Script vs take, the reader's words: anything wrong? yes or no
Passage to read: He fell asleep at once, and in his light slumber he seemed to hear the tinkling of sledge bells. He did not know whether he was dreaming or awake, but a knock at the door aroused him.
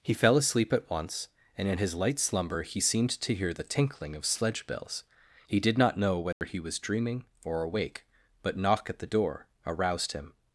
yes